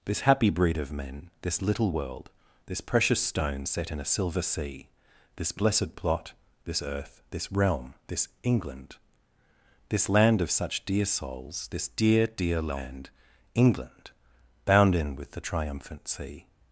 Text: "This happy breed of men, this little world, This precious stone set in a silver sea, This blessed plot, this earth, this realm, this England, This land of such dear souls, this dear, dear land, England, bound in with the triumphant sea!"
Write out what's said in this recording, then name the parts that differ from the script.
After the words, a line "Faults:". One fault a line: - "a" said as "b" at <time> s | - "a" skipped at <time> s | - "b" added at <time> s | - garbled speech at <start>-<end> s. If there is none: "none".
"This happy breed of men, this little world, This precious stone set in a silver sea, This blessed plot, this earth, this realm, this England, This land of such dear souls, this dear, dear land, England, bound in with the triumphant sea!"
Faults:
none